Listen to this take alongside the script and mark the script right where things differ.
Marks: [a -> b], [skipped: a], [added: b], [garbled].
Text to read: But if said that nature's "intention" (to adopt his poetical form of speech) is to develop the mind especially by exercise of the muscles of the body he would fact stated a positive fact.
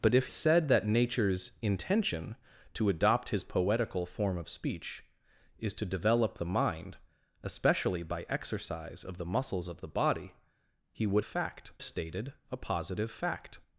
But if said that nature's "intention" (to adopt his poetical form of speech) is to develop the mind especially by exercise of the muscles of the body he would fact stated a positive fact.